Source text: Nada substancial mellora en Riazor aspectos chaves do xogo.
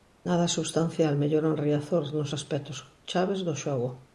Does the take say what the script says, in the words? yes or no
no